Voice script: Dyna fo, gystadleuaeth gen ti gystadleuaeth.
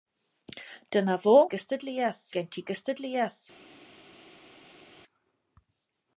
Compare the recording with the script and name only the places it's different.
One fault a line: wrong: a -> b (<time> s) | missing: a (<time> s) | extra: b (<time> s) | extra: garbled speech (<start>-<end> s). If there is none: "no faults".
no faults